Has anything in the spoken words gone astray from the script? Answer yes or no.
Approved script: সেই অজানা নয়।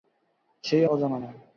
no